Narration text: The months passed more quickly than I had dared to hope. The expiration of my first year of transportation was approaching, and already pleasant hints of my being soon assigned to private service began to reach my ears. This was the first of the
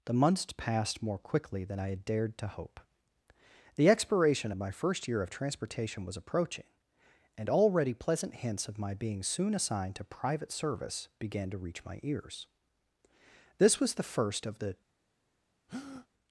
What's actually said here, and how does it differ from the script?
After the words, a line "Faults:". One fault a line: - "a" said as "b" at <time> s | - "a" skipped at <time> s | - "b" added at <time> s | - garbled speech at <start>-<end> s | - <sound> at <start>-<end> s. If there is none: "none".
The months passed more quickly than I had dared to hope. The expiration of my first year of transportation was approaching, and already pleasant hints of my being soon assigned to private service began to reach my ears. This was the first of the
Faults:
- breath at 15.7-16.1 s